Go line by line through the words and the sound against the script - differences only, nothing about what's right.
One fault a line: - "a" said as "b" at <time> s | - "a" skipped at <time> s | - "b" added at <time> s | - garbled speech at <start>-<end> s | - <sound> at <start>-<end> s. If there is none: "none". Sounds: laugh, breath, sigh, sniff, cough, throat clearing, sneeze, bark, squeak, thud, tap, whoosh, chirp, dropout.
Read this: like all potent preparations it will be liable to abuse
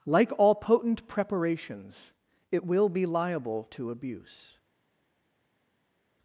none